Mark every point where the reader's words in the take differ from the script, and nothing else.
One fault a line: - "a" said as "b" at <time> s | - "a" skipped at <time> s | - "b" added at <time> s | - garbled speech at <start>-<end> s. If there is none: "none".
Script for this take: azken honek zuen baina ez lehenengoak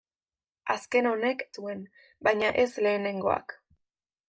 none